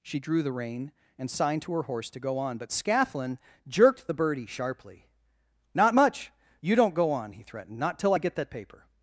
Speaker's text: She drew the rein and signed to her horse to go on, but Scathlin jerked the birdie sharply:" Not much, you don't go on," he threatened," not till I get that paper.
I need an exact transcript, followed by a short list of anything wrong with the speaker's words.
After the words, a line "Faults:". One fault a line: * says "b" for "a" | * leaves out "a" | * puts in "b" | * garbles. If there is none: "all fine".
She drew the rein and signed to her horse to go on, but Scathlin jerked the birdie sharply:" Not much, you don't go on," he threatened," not till I get that paper.
Faults:
all fine